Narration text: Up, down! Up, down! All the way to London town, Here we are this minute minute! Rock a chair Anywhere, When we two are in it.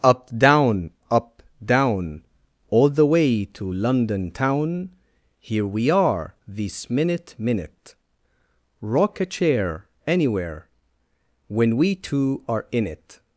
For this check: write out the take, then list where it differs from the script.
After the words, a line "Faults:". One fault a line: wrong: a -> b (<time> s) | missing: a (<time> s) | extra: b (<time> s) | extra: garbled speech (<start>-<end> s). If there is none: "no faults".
Up, down! Up, down! All the way to London town, Here we are this minute minute! Rock a chair Anywhere, When we two are in it.
Faults:
no faults